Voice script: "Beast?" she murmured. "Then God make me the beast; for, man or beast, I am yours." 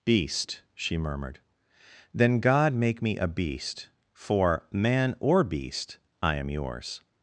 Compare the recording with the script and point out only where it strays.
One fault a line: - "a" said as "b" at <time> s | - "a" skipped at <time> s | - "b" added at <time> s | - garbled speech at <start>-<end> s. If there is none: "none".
- "the" said as "a" at 3.2 s